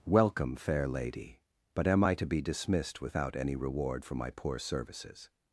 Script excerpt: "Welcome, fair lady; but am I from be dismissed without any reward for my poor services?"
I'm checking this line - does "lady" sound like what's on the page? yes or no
yes